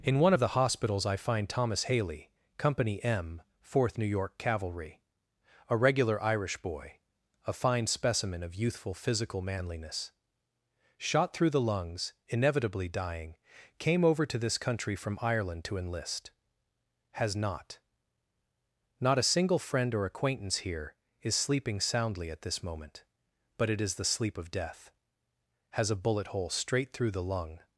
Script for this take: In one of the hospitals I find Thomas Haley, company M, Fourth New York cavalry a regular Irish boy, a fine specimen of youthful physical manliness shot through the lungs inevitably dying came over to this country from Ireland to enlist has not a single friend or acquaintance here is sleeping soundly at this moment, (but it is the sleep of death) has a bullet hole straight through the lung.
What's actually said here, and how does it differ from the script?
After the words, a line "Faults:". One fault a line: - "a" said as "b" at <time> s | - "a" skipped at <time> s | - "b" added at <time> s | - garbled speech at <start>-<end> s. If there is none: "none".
In one of the hospitals I find Thomas Haley, company M, Fourth New York cavalry a regular Irish boy, a fine specimen of youthful physical manliness shot through the lungs inevitably dying came over to this country from Ireland to enlist has not not a single friend or acquaintance here is sleeping soundly at this moment, (but it is the sleep of death) has a bullet hole straight through the lung.
Faults:
- "not" added at 19.0 s